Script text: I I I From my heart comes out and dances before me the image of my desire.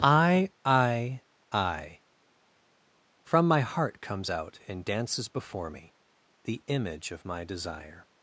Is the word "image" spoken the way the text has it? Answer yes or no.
yes